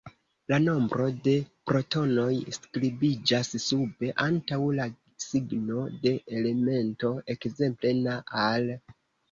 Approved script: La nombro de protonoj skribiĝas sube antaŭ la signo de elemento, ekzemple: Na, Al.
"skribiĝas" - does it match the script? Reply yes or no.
yes